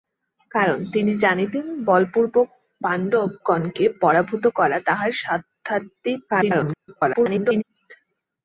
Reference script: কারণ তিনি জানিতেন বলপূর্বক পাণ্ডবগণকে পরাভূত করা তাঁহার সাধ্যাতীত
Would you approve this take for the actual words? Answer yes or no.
no